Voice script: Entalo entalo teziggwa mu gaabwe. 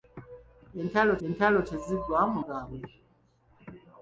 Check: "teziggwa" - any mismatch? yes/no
no